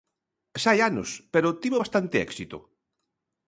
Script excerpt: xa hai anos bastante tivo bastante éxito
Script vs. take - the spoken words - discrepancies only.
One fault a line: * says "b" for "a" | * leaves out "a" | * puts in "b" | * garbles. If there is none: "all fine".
* says "pero" for "bastante"